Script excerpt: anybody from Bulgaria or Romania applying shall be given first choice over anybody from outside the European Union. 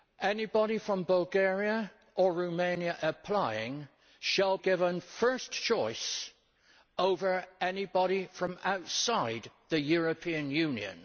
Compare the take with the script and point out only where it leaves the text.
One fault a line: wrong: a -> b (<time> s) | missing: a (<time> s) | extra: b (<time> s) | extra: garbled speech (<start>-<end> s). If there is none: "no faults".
missing: be (4.6 s)